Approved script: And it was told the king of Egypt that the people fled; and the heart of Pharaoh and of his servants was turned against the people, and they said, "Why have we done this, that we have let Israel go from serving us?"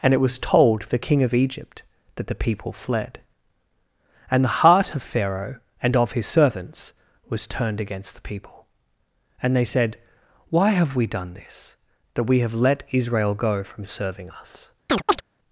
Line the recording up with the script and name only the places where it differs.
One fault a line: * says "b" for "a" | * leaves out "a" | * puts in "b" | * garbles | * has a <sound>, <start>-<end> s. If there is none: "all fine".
* has a chirp, 14.9-15.2 s